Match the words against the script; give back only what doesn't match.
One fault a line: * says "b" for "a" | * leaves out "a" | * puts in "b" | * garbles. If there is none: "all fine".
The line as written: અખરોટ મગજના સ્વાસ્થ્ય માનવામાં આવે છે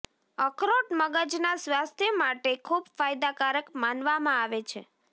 * puts in "માટે ખૂબ ફાયદાકારક"